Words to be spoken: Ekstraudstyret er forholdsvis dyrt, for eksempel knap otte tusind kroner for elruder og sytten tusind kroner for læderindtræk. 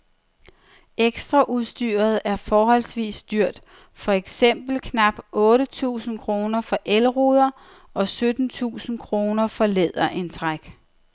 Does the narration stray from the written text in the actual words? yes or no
no